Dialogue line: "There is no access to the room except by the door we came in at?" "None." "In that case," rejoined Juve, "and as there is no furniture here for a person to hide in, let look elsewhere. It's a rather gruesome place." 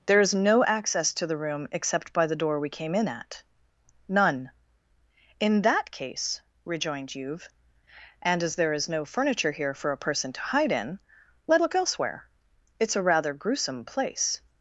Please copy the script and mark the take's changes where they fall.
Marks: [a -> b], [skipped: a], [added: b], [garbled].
"There is no access to the room except by the door we came in at?" "None." "In that case," rejoined Juve, "and as there is no furniture here for a person to hide in, let look elsewhere. It's a rather gruesome place."